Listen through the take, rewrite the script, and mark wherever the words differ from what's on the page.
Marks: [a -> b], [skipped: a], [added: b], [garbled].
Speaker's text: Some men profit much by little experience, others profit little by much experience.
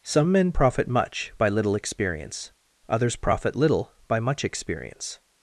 Some men profit much by little experience, others profit little by much experience.